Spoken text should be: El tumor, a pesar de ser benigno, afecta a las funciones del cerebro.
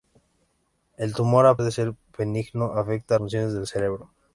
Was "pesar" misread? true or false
true